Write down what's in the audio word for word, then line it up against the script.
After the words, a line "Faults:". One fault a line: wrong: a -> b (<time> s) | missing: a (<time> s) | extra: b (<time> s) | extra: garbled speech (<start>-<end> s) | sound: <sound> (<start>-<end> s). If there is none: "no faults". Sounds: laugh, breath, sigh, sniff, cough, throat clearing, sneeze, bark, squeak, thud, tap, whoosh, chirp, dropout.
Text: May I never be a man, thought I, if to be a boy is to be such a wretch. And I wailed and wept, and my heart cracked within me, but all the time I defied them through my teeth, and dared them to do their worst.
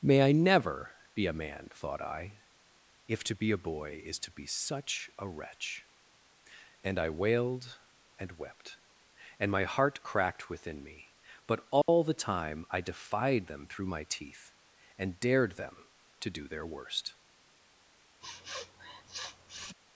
May I never be a man, thought I, if to be a boy is to be such a wretch. And I wailed and wept, and my heart cracked within me, but all the time I defied them through my teeth, and dared them to do their worst.
Faults:
sound: dropout (11.8-11.9 s)
sound: sniff (18.2-19.7 s)